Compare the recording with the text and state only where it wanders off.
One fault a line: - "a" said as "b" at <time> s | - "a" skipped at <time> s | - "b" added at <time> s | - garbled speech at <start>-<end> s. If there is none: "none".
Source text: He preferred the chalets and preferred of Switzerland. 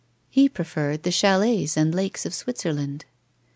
- "preferred" said as "lakes" at 1.9 s